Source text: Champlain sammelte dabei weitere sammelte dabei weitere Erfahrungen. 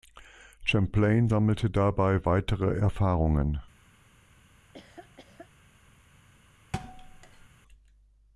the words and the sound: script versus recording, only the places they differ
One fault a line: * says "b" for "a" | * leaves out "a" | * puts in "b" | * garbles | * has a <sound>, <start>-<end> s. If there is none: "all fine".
* leaves out "sammelte dabei weitere"
* has a laugh, 4.6-5.5 s
* has a thud, 6.7-7.5 s